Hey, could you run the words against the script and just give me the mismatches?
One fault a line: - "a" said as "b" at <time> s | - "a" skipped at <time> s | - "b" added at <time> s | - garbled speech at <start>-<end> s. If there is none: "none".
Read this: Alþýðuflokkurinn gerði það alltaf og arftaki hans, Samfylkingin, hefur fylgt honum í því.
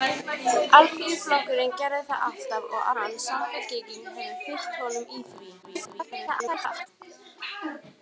- "arftaki" skipped at 2.9 s
- garbled speech at 5.6-6.9 s